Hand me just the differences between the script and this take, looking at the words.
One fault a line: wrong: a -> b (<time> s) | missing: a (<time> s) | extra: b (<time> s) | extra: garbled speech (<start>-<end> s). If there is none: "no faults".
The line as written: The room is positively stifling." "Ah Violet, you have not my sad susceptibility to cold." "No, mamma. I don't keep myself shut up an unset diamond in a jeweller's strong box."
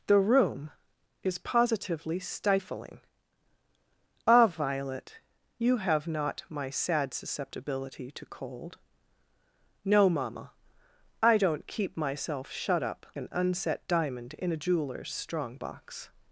no faults